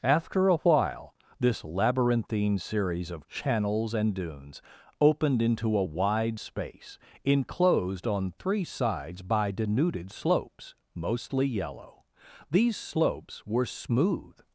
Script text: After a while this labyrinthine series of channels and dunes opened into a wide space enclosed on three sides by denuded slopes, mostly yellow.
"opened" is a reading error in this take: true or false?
false